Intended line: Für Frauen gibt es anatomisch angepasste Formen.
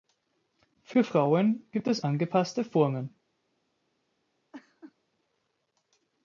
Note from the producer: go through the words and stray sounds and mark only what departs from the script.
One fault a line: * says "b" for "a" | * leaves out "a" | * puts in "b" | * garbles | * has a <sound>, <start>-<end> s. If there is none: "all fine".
* leaves out "anatomisch"
* has a laugh, 4.5-4.9 s